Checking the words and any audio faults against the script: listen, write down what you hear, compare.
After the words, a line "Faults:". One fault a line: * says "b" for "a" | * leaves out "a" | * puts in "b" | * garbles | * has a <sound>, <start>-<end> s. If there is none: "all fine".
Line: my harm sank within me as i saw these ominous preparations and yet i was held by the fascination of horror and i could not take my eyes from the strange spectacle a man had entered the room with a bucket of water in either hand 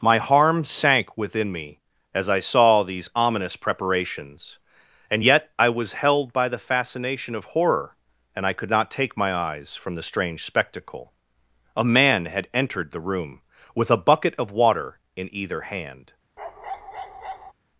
my harm sank within me as i saw these ominous preparations and yet i was held by the fascination of horror and i could not take my eyes from the strange spectacle a man had entered the room with a bucket of water in either hand
Faults:
* has a bark, 16.4-17.5 s